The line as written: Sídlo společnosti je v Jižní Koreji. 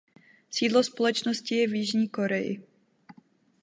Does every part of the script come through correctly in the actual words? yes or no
yes